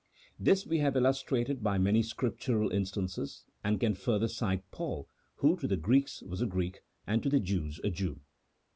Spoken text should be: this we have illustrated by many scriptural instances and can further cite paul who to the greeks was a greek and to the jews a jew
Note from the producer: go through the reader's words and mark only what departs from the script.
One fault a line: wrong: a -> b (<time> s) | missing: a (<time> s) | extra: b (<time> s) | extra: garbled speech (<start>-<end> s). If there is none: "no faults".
no faults